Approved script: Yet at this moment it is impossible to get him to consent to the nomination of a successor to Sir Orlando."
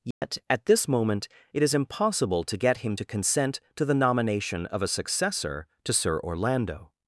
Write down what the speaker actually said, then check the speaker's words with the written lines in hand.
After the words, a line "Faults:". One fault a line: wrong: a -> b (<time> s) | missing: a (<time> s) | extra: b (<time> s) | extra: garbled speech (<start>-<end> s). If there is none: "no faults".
Yet at this moment it is impossible to get him to consent to the nomination of a successor to Sir Orlando."
Faults:
no faults